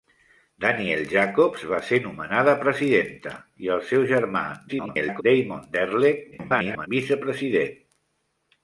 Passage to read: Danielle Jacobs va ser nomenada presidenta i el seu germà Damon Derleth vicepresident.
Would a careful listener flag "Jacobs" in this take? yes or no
no